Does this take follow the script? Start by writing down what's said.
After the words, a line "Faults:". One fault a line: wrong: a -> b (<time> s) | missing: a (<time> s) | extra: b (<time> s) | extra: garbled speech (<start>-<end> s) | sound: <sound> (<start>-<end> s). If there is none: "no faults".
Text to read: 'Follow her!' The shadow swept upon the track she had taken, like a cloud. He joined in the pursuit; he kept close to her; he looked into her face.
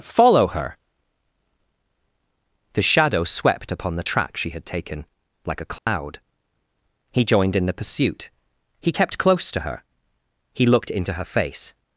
'Follow her!' The shadow swept upon the track she had taken, like a cloud. He joined in the pursuit; he kept close to her; he looked into her face.
Faults:
sound: dropout (5.8-5.9 s)